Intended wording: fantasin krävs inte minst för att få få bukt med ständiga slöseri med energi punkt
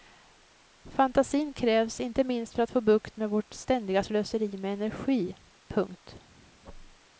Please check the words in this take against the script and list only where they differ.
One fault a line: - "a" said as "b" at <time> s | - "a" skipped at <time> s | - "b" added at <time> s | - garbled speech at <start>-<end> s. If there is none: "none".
- "få" skipped at 2.8 s
- "vårt" added at 3.3 s